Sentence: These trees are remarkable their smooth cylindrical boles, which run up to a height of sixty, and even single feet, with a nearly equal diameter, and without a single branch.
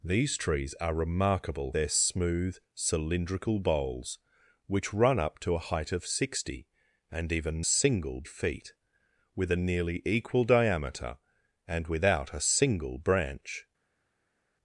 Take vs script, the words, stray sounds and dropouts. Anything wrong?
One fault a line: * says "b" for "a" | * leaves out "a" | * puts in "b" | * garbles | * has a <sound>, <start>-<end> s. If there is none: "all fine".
all fine